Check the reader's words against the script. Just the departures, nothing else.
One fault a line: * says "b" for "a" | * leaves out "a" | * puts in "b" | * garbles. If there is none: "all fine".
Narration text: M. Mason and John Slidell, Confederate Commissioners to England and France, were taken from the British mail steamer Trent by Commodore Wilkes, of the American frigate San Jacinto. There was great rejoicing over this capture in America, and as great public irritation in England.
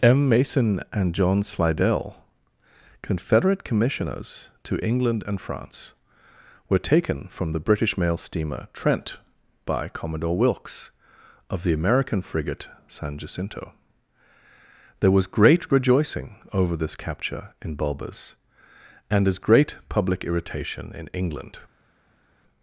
* says "Bulbers" for "America"